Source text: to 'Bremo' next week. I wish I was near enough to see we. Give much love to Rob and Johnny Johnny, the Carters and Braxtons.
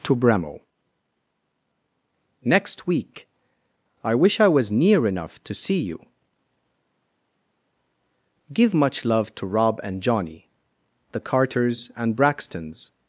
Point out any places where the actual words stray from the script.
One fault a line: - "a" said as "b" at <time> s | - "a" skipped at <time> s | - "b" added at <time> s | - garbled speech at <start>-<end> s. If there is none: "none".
- "we" said as "you" at 5.8 s
- "Johnny" skipped at 10.5 s